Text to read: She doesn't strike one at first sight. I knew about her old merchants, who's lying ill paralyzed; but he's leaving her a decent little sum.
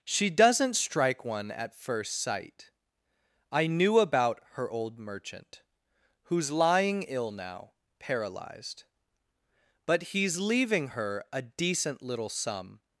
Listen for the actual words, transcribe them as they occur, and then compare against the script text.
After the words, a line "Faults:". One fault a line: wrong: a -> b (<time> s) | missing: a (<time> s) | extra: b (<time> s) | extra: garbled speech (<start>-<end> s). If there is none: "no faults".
She doesn't strike one at first sight. I knew about her old merchant, who's lying ill now, paralyzed; but he's leaving her a decent little sum.
Faults:
wrong: merchants -> merchant (5.0 s)
extra: now (7.3 s)